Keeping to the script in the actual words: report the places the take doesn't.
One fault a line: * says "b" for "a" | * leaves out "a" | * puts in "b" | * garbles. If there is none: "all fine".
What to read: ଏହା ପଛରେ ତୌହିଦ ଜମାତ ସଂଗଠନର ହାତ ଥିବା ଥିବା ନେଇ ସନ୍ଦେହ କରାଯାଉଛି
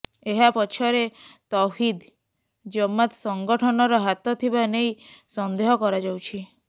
* leaves out "ଥିବା"